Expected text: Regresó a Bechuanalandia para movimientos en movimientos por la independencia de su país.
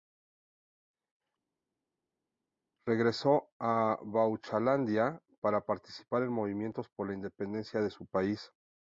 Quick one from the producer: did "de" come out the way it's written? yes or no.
yes